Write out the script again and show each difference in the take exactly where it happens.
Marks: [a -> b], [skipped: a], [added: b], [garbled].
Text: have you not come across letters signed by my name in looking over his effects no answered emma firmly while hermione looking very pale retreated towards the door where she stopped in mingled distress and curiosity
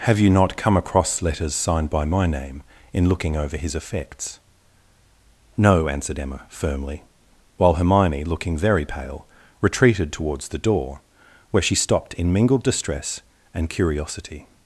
have you not come across letters signed by my name in looking over his effects no answered emma firmly while hermione looking very pale retreated towards the door where she stopped in mingled distress and curiosity